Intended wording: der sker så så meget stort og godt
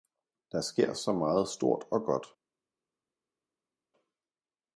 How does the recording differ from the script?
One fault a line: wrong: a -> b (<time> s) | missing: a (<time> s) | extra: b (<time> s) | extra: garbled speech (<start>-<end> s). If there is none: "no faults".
missing: så (1.1 s)